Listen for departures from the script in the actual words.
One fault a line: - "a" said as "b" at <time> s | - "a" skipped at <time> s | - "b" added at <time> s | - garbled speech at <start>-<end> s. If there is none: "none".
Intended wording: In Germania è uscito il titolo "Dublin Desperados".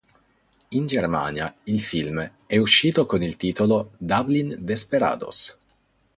- "il film" added at 1.6 s
- "con" added at 3.1 s